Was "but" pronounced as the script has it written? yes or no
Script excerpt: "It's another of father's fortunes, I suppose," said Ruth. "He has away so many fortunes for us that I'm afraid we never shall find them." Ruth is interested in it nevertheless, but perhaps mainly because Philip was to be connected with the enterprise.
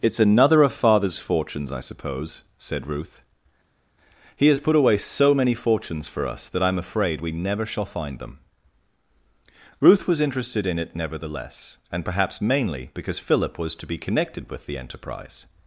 no